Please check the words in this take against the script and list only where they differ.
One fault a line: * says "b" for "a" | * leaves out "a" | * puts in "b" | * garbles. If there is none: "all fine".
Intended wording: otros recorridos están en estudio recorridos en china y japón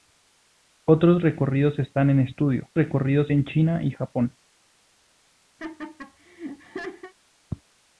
all fine